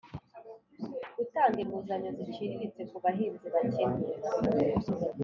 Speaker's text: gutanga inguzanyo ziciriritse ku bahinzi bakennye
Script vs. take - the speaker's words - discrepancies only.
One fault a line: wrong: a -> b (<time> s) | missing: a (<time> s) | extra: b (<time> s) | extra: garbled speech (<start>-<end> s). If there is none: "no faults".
no faults